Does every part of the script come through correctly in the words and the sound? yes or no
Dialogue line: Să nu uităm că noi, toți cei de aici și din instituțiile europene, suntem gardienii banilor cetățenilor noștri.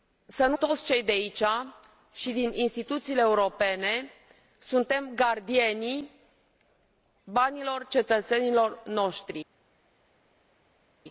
no